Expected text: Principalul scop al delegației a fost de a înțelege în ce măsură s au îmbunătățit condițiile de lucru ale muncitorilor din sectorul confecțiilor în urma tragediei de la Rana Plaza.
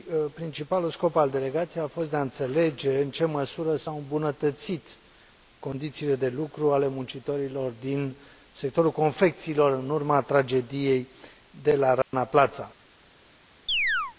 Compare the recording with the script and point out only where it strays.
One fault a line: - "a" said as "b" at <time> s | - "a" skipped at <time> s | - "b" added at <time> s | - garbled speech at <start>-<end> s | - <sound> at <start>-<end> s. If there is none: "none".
- dropout at 12.0-12.1 s
- chirp at 13.7-14.2 s